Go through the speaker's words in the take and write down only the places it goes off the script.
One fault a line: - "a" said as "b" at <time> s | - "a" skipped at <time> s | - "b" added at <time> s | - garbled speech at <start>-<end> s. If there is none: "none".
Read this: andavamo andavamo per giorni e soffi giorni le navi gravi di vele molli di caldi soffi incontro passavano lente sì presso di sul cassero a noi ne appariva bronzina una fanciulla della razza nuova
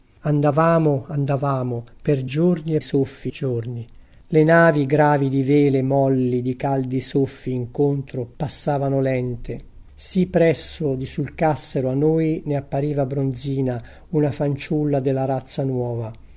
none